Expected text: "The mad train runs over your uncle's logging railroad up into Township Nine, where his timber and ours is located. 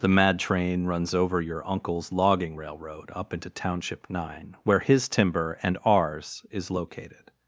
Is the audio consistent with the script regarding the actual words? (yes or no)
yes